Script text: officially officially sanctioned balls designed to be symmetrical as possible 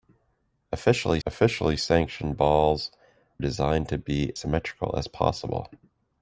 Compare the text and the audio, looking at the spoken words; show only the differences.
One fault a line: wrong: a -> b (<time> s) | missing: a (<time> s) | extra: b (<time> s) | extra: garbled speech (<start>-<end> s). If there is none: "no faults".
no faults